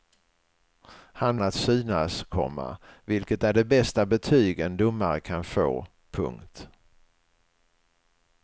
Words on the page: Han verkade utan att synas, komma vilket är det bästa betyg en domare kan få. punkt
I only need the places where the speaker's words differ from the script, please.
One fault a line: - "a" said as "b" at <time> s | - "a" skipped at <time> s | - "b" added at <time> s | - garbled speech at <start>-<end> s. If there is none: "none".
- "verkade utan" skipped at 1.4 s